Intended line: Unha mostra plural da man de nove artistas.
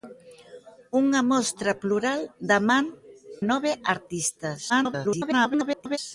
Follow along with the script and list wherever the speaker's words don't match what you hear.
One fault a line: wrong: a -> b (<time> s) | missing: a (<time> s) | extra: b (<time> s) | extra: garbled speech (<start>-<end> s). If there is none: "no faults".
missing: de (2.9 s)
extra: garbled speech (4.7-6.0 s)